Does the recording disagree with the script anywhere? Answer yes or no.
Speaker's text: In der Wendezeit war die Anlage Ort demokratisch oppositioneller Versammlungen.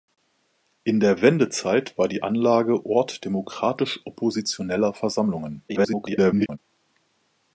yes